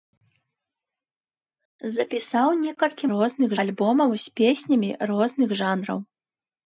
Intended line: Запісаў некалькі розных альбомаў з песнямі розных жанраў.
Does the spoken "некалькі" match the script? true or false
true